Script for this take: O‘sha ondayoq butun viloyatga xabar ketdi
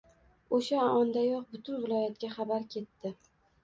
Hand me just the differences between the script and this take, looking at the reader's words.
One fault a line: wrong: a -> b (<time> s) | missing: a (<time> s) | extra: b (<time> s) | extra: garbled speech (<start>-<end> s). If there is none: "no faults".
no faults